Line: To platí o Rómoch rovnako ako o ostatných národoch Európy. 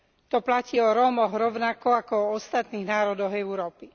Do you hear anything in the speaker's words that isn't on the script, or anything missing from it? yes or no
no